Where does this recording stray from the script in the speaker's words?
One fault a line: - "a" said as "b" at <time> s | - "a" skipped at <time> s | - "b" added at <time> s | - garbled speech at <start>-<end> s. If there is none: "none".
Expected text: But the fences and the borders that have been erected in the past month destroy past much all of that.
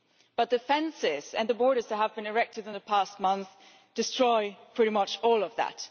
- "past" said as "pretty" at 4.7 s